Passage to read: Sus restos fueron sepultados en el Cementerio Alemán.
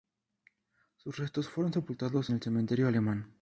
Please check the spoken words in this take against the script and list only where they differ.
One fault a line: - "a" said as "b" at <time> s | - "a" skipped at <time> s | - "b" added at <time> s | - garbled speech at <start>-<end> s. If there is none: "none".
- "en" skipped at 2.3 s